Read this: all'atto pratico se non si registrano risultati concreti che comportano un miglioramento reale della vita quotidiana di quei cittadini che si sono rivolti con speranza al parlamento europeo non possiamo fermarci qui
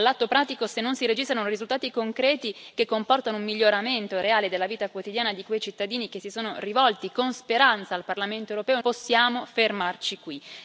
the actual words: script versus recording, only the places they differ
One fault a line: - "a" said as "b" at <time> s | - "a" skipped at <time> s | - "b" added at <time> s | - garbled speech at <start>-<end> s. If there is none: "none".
- "non" skipped at 8.8 s